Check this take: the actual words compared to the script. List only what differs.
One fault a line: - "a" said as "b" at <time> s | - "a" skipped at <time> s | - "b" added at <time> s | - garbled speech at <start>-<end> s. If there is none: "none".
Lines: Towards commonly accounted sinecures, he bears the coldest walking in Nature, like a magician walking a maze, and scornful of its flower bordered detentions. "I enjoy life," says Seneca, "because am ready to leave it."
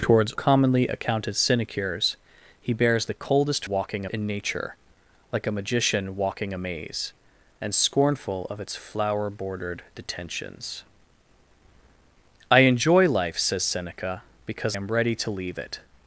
none